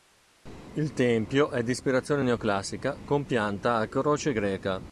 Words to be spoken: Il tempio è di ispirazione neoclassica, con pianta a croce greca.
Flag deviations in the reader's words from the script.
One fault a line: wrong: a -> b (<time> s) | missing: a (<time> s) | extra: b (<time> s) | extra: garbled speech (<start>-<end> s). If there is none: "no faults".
no faults